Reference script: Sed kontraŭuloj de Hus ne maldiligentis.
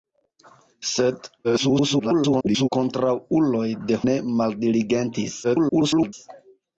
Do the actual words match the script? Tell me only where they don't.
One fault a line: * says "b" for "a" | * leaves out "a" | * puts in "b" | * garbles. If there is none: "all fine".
* garbles
* leaves out "Hus"
* garbles